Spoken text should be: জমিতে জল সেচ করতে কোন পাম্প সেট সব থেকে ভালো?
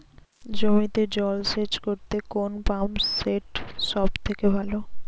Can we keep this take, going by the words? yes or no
yes